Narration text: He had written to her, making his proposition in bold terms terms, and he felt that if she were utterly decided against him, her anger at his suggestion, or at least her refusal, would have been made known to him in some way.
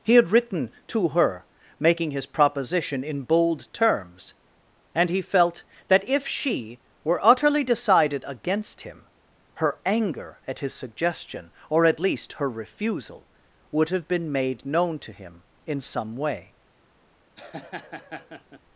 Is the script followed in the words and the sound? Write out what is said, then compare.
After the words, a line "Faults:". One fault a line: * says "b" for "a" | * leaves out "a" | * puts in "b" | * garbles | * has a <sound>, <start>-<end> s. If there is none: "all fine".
He had written to her, making his proposition in bold terms, and he felt that if she were utterly decided against him, her anger at his suggestion, or at least her refusal, would have been made known to him in some way.
Faults:
* leaves out "terms"
* has a laugh, 17.4-18.6 s